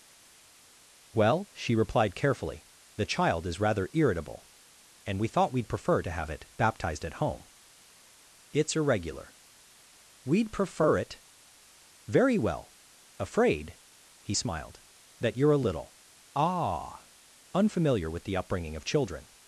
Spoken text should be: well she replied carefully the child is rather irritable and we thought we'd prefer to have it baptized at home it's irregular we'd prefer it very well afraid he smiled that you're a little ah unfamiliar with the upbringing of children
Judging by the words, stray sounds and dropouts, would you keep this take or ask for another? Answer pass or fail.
pass